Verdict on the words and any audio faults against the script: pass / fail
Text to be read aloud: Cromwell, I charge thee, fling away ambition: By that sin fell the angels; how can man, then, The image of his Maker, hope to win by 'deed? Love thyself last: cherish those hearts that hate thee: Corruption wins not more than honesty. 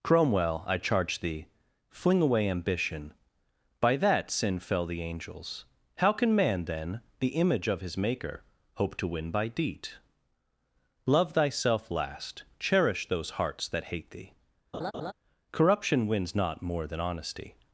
fail